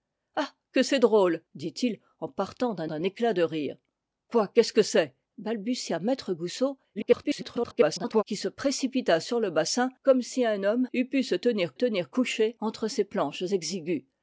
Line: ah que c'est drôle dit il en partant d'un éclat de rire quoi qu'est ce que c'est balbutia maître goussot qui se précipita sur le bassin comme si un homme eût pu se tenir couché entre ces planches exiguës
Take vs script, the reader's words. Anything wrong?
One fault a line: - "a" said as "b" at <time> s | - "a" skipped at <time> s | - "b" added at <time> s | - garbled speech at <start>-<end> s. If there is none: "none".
- "d'un" added at 2.8 s
- garbled speech at 6.9-8.2 s
- "tenir" added at 11.7 s